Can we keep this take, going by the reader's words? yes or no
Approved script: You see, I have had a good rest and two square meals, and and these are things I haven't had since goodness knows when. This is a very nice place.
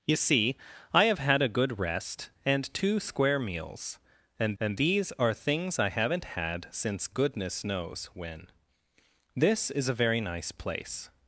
yes